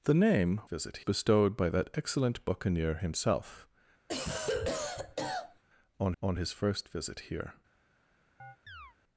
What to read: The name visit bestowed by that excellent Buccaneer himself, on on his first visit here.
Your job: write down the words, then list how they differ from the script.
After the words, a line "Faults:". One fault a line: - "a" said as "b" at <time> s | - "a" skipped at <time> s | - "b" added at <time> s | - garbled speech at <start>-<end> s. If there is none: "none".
The name visit bestowed by that excellent Buccaneer himself, on on his first visit here.
Faults:
none